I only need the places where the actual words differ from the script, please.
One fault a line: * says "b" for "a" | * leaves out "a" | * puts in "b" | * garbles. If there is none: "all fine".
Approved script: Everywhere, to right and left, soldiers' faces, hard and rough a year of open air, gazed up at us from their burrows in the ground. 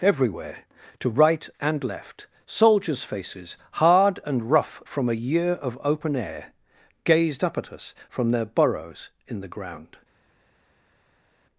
* puts in "from"